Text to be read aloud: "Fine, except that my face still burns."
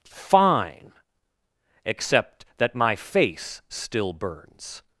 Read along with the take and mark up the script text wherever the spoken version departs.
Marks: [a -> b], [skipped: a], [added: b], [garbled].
"Fine, except that my face still burns."